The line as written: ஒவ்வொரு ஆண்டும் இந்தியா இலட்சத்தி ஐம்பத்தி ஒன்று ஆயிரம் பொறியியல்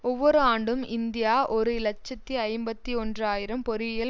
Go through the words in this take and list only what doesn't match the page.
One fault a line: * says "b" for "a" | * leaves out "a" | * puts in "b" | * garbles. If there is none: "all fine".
* puts in "ஒரு"